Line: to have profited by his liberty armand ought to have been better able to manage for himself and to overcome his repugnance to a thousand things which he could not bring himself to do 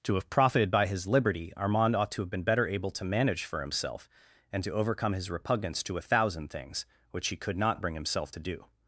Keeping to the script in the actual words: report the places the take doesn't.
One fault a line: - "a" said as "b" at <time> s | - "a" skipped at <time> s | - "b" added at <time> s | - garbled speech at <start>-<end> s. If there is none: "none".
none